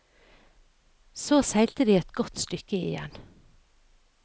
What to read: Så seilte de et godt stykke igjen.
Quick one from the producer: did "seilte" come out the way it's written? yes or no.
yes